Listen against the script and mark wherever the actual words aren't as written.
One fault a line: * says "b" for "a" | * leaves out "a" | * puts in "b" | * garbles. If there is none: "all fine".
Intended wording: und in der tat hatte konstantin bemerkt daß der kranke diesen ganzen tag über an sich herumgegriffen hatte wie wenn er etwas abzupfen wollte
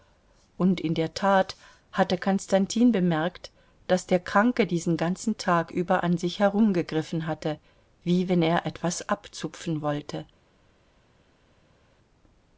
all fine